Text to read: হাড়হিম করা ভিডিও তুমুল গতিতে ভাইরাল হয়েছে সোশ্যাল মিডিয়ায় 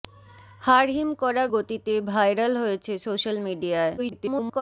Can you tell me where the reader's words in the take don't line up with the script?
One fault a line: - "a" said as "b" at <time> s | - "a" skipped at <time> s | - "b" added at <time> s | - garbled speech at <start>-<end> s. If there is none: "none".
- "ভিডিও তুমুল" skipped at 1.4 s
- garbled speech at 4.0-4.6 s